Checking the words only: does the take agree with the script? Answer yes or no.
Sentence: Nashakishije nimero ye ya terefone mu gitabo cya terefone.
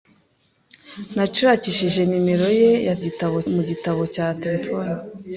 no